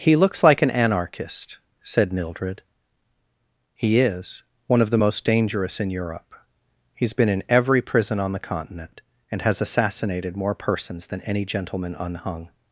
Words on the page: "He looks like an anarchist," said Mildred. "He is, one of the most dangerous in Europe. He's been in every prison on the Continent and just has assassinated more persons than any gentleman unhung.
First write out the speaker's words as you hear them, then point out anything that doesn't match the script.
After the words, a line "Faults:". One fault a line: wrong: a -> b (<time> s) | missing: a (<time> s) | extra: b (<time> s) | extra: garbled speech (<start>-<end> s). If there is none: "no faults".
"He looks like an anarchist," said Mildred. "He is, one of the most dangerous in Europe. He's been in every prison on the Continent and has assassinated more persons than any gentleman unhung.
Faults:
missing: just (9.4 s)